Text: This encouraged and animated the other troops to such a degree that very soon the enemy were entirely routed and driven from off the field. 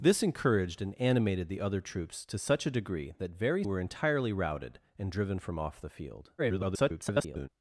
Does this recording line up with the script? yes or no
no